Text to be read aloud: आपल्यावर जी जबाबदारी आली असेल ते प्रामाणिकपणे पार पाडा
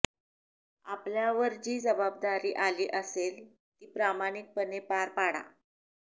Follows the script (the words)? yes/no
no